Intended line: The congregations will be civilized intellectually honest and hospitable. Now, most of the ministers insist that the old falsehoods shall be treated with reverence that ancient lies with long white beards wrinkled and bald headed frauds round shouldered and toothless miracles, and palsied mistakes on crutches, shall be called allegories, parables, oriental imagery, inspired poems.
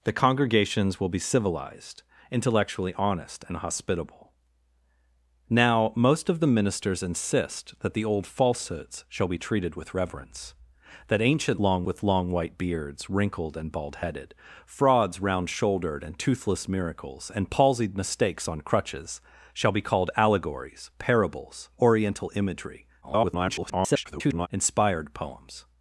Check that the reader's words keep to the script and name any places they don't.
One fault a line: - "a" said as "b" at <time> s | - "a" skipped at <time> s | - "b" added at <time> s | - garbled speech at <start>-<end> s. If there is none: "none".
- "lies" said as "long" at 11.6 s
- garbled speech at 23.0-24.5 s